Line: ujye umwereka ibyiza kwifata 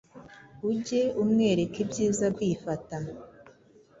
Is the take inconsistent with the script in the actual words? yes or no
no